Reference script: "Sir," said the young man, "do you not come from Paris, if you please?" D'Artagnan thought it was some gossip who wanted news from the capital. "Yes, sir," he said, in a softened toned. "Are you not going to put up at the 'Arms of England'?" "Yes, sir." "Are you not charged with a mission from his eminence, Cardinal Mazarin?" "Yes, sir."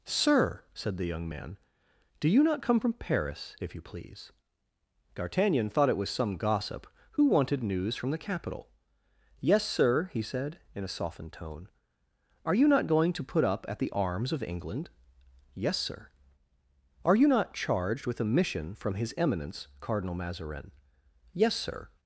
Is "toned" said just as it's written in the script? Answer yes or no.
no